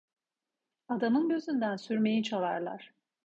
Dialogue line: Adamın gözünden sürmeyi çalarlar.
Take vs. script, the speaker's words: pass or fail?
pass